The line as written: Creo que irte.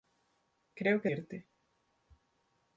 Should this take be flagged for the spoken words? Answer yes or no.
no